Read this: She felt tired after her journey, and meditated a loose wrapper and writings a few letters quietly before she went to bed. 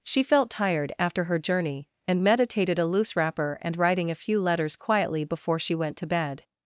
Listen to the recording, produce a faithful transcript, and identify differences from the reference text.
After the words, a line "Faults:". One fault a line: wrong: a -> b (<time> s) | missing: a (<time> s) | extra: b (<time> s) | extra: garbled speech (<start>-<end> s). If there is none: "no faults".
She felt tired after her journey, and meditated a loose wrapper and writing a few letters quietly before she went to bed.
Faults:
wrong: writings -> writing (3.8 s)